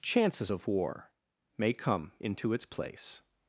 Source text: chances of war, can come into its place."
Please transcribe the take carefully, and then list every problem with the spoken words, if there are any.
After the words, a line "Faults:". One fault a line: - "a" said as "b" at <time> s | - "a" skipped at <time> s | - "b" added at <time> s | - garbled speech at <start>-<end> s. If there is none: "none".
chances of war, may come into its place."
Faults:
- "can" said as "may" at 1.6 s